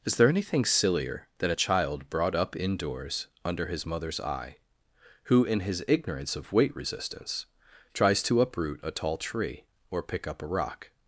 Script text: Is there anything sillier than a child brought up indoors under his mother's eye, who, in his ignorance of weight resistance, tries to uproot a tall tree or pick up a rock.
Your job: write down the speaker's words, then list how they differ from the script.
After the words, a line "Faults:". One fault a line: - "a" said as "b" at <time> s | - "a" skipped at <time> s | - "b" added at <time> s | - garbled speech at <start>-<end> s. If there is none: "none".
Is there anything sillier than a child brought up indoors under his mother's eye, who, in his ignorance of weight resistance, tries to uproot a tall tree or pick up a rock.
Faults:
none